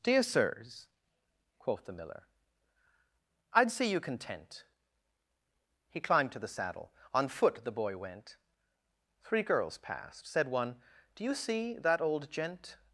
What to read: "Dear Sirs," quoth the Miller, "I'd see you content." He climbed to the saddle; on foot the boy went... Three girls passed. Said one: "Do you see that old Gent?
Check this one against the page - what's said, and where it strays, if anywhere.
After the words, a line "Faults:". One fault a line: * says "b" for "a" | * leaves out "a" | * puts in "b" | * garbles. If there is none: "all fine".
"Dear Sirs," quoth the Miller, "I'd see you content." He climbed to the saddle; on foot the boy went... Three girls passed. Said one: "Do you see that old Gent?
Faults:
all fine